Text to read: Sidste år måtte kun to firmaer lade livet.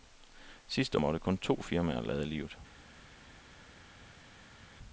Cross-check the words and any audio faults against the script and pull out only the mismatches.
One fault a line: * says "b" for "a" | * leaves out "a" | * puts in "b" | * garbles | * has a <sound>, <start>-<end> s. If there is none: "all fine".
* leaves out "år"